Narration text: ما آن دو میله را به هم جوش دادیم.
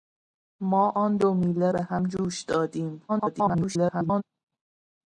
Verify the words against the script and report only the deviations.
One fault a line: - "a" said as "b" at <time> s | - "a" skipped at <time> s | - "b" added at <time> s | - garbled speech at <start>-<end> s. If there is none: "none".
- "را" skipped at 1.7 s
- garbled speech at 3.1-4.2 s